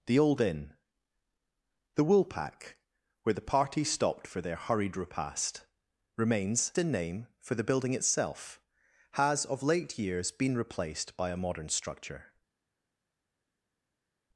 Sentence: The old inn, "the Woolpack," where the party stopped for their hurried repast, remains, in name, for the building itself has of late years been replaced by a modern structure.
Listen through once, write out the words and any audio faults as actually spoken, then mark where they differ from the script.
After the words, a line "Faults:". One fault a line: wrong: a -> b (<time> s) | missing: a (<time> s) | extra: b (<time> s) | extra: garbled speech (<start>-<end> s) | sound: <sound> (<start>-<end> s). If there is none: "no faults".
The old inn, "the Woolpack," where the party stopped for their hurried repast, remains, in name, for the building itself has of late years been replaced by a modern structure.
Faults:
no faults